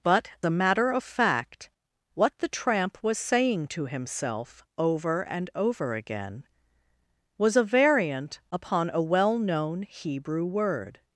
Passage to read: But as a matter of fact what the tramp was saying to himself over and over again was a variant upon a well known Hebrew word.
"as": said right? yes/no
no